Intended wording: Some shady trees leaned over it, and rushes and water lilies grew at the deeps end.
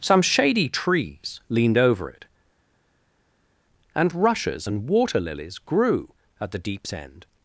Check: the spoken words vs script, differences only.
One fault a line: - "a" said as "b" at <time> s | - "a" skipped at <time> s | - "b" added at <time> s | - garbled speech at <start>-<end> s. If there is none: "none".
none